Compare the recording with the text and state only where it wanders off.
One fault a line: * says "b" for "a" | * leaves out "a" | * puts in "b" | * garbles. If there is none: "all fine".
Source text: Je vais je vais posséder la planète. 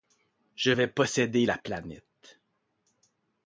* leaves out "je vais"